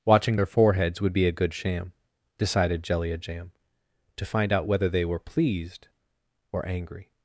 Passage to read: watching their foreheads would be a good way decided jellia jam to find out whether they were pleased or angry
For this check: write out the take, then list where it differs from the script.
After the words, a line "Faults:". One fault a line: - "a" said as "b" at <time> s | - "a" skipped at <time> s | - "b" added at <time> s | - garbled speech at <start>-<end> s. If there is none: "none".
watching their foreheads would be a good sham decided jellia jam to find out whether they were pleased or angry
Faults:
- "way" said as "sham" at 1.5 s